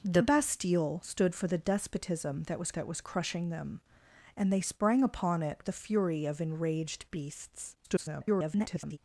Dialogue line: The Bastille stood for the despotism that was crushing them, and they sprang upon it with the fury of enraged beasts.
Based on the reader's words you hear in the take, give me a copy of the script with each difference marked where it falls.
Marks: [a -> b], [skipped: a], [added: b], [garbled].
The Bastille stood for the despotism that was [added: that was] crushing them, and they sprang upon it [skipped: with] the fury of enraged beasts. [garbled]